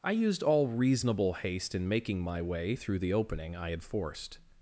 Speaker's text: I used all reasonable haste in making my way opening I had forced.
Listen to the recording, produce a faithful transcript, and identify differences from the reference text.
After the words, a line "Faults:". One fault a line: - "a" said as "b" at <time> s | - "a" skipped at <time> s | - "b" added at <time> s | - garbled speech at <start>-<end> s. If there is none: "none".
I used all reasonable haste in making my way through the opening I had forced.
Faults:
- "through the" added at 2.7 s